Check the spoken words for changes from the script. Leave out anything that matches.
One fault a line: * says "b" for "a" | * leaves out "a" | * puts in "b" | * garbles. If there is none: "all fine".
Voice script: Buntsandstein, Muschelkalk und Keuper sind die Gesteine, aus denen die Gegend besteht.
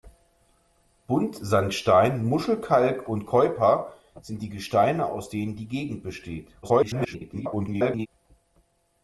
* garbles